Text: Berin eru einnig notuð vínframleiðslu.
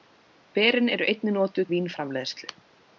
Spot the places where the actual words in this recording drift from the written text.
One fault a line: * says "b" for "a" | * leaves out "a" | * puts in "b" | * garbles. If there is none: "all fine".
all fine